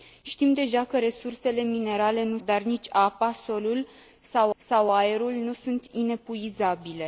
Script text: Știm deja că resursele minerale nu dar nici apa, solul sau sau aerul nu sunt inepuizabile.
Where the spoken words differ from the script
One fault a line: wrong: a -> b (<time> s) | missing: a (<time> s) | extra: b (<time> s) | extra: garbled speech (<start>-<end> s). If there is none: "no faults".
no faults